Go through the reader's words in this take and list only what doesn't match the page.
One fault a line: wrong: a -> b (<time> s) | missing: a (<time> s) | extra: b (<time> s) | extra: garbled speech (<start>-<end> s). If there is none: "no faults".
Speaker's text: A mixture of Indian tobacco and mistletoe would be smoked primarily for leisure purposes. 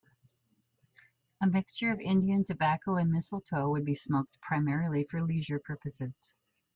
no faults